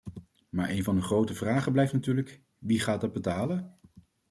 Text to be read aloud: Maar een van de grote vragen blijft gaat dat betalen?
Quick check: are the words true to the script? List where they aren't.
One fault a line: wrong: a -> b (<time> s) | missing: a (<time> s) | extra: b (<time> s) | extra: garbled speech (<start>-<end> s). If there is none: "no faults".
extra: natuurlijk wie (1.9 s)